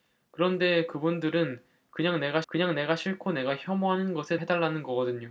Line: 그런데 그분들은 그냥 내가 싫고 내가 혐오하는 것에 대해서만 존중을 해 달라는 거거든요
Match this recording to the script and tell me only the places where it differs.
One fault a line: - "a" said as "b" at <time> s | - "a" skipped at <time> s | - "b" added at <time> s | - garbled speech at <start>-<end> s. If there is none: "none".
- "그냥 내가" added at 2.5 s
- "대해서만 존중을" skipped at 4.4 s